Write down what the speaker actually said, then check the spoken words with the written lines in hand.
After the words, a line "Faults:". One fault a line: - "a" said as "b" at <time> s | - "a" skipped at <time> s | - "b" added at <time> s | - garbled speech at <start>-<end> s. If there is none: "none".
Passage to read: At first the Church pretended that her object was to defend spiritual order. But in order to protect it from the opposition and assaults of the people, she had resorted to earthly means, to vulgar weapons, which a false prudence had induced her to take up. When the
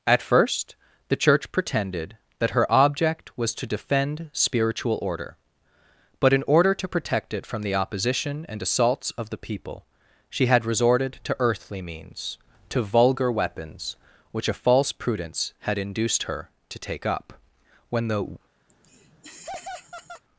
At first the Church pretended that her object was to defend spiritual order. But in order to protect it from the opposition and assaults of the people, she had resorted to earthly means, to vulgar weapons, which a false prudence had induced her to take up. When the
Faults:
none